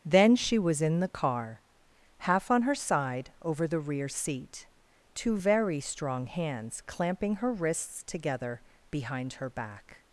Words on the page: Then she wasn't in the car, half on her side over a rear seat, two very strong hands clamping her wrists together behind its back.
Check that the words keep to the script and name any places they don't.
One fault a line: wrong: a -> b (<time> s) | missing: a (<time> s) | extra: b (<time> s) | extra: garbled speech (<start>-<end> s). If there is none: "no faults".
wrong: wasn't -> was (0.6 s)
wrong: a -> the (3.7 s)
wrong: its -> her (9.3 s)